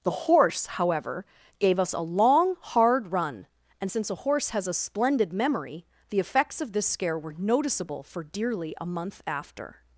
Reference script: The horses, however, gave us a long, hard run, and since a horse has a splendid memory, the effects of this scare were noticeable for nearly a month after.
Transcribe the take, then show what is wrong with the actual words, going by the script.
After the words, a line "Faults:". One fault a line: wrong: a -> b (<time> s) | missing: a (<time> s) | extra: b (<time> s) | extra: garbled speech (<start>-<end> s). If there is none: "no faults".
The horse, however, gave us a long, hard run, and since a horse has a splendid memory, the effects of this scare were noticeable for dearly a month after.
Faults:
wrong: horses -> horse (0.1 s)
wrong: nearly -> dearly (8.2 s)